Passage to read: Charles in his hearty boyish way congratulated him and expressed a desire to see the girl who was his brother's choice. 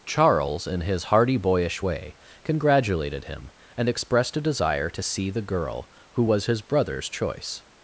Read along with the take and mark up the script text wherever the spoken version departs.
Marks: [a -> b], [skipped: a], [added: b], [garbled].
Charles in his hearty boyish way congratulated him and expressed a desire to see the girl who was his brother's choice.